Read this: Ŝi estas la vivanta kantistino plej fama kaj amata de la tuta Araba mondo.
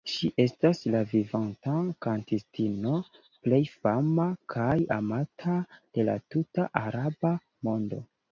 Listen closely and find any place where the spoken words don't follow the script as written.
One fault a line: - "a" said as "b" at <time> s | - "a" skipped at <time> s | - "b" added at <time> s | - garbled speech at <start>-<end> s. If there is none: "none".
none